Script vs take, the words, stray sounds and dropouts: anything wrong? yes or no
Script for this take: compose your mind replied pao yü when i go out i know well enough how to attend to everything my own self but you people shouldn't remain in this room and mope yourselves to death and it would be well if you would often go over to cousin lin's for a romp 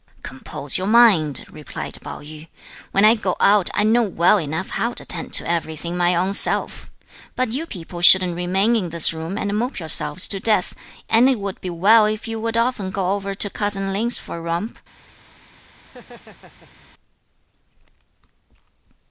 yes